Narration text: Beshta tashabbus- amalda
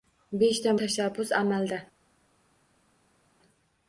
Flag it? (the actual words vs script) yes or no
no